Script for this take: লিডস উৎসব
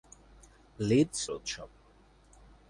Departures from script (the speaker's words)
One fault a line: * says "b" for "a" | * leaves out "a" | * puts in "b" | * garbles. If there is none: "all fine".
all fine